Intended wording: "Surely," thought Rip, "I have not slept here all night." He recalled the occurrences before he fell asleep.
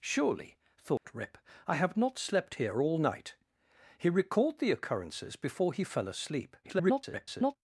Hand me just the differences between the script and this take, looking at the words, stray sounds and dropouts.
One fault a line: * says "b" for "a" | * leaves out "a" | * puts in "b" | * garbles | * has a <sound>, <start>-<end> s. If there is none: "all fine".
* has a dropout, 1.0-1.0 s
* garbles